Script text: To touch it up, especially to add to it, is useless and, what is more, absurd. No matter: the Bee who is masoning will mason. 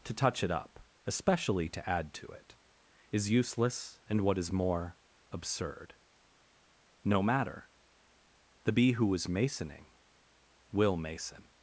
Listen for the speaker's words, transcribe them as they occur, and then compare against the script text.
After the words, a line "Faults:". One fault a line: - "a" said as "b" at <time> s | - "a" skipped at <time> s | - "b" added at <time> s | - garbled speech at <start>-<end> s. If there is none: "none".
To touch it up, especially to add to it, is useless and, what is more, absurd. No matter: the Bee who is masoning will mason.
Faults:
none